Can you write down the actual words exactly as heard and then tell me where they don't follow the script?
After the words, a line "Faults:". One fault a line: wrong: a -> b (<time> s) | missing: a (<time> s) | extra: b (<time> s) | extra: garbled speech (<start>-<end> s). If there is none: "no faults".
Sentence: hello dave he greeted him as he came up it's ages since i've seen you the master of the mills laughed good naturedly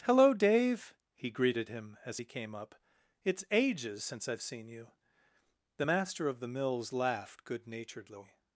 hello dave he greeted him as he came up it's ages since i've seen you the master of the mills laughed good naturedly
Faults:
no faults